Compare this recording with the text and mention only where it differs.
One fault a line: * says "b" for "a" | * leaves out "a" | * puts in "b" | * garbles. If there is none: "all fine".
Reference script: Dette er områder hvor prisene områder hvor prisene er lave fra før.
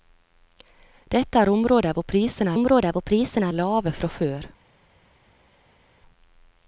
all fine